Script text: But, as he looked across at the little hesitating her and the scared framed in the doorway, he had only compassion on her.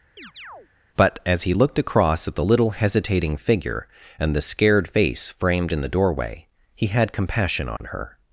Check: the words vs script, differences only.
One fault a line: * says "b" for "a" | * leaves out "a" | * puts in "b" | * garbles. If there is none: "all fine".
* says "figure" for "her"
* puts in "face"
* leaves out "only"